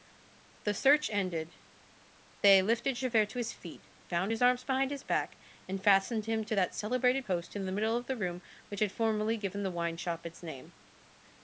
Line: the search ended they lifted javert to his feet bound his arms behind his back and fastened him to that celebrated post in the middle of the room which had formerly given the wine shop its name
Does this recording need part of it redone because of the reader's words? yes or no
no